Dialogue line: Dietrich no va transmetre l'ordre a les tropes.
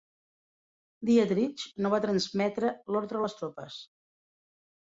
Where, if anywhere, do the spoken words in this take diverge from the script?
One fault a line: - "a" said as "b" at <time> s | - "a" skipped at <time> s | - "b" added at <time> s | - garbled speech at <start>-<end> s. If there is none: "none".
none